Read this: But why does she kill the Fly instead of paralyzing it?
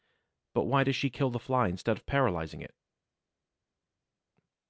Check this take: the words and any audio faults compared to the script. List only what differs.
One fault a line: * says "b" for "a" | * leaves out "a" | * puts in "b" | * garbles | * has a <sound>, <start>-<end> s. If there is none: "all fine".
all fine